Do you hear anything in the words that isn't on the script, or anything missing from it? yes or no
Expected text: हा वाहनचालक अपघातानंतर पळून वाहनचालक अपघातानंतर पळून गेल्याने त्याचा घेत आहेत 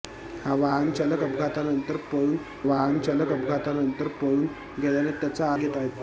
no